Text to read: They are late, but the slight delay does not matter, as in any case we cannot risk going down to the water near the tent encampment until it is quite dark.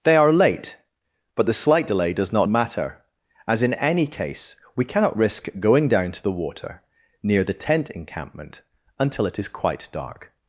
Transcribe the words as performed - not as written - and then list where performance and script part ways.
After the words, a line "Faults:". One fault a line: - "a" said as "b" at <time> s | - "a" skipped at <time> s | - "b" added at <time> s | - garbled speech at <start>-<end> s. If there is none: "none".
They are late, but the slight delay does not matter, as in any case we cannot risk going down to the water near the tent encampment until it is quite dark.
Faults:
none